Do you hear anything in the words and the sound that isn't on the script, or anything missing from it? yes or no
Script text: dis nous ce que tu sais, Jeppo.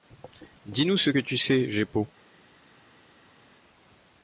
no